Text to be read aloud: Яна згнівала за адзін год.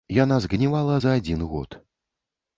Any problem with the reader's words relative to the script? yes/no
no